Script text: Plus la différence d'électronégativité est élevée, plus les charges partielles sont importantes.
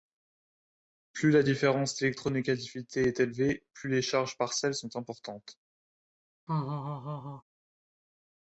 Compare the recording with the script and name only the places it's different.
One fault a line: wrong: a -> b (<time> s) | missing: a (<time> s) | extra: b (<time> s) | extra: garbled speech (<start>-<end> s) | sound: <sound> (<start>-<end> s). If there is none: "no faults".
sound: laugh (6.5-7.4 s)